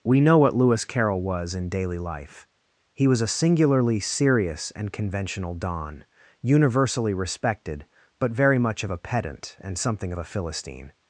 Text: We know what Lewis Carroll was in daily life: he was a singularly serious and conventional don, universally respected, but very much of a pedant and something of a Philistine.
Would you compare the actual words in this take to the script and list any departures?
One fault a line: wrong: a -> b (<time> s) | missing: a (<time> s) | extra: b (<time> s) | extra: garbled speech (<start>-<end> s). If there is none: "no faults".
no faults